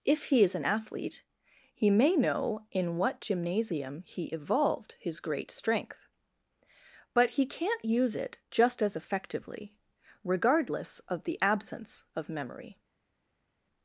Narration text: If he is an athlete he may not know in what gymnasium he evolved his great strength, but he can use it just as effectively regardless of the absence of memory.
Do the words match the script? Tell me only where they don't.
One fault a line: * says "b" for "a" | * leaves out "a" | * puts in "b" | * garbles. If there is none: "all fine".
* leaves out "not"
* says "can't" for "can"